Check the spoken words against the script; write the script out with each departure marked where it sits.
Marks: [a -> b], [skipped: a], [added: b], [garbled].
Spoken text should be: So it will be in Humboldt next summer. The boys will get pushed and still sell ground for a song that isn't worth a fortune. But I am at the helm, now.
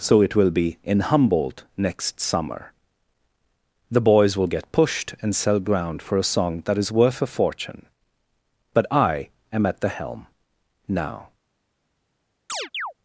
So it will be in Humboldt next summer. The boys will get pushed and [skipped: still] sell ground for a song that [isn't -> is] worth a fortune. But I am at the helm, now.